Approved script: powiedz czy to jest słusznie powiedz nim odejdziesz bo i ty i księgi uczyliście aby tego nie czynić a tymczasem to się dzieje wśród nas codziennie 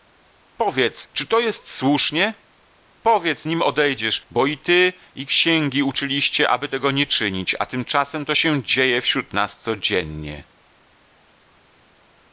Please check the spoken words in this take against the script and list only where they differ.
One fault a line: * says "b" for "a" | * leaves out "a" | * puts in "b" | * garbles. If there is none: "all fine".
all fine